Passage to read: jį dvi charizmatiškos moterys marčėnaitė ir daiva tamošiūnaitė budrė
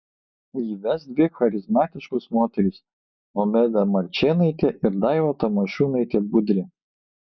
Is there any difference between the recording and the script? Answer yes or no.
yes